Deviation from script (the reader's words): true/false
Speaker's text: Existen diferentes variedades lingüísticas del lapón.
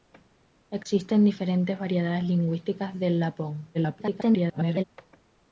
true